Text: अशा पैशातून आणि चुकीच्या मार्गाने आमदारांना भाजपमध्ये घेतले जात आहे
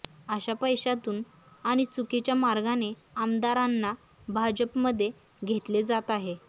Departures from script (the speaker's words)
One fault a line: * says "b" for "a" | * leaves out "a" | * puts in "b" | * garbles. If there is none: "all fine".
all fine